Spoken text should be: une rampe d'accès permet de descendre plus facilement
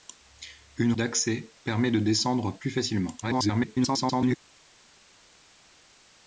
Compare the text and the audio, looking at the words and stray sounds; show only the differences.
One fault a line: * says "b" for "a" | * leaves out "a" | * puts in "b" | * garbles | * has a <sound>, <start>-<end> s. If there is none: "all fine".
* leaves out "rampe"
* garbles